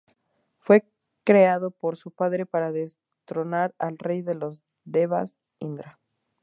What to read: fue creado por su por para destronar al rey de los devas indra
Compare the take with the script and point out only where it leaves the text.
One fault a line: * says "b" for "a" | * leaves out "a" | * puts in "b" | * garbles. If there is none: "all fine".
* says "padre" for "por"